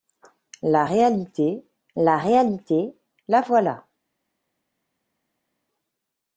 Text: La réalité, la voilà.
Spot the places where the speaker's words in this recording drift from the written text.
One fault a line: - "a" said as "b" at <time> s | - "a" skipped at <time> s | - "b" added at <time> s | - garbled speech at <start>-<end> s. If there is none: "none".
- "réalité la" added at 2.2 s